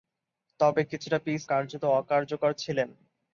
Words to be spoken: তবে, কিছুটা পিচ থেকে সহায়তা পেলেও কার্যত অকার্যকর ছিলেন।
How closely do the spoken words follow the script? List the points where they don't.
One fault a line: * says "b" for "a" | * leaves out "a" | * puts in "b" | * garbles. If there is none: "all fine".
* leaves out "থেকে সহায়তা পেলেও"